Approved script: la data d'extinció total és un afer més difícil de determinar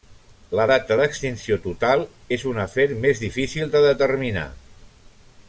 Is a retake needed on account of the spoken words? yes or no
no